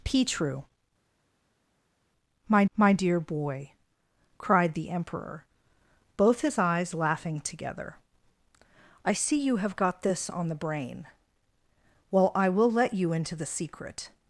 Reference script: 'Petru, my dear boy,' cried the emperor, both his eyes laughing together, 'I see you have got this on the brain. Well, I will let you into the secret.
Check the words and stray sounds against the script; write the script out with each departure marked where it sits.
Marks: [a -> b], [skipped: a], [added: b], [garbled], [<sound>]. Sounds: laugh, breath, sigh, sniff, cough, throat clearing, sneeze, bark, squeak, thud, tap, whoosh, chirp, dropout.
'Petru, my [added: my] dear boy,' cried the emperor, both his eyes laughing together, 'I see you have got this on the brain. Well, I will let you into the secret.